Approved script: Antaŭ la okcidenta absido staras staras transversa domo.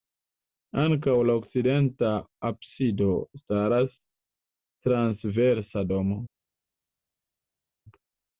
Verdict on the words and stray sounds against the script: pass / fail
fail